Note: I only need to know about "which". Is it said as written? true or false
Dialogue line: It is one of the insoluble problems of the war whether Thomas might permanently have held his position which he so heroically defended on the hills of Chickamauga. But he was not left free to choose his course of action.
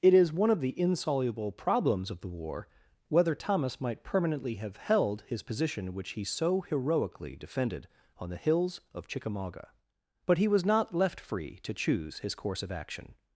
true